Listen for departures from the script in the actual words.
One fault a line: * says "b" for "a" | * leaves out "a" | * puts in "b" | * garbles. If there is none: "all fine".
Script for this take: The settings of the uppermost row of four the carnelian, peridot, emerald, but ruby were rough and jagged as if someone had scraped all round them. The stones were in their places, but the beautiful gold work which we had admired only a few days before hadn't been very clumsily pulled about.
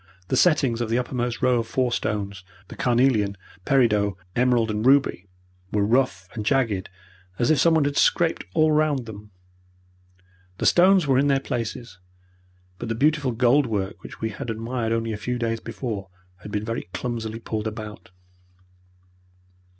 * puts in "stones"
* says "and" for "but"
* says "had" for "hadn't"